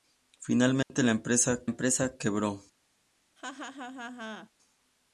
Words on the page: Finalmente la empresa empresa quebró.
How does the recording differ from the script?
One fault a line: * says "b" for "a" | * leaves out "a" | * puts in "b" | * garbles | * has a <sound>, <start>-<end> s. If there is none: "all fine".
* has a dropout, 0.8-0.9 s
* has a laugh, 3.4-4.5 s